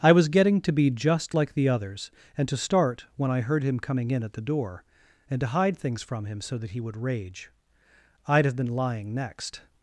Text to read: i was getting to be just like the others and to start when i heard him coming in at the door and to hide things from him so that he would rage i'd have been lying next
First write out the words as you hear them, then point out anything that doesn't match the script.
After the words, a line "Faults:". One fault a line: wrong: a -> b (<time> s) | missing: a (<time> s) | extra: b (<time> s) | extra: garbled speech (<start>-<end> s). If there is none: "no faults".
i was getting to be just like the others and to start when i heard him coming in at the door and to hide things from him so that he would rage i'd have been lying next
Faults:
no faults